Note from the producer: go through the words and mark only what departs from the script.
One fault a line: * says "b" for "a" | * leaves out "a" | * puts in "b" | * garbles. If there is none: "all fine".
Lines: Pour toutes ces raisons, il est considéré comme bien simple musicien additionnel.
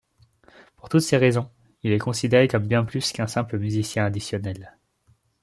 * puts in "plus qu'un"